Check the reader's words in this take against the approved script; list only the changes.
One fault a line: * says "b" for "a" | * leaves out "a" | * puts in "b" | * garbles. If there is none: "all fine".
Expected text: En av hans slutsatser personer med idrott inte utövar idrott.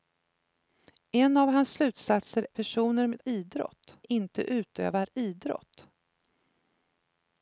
all fine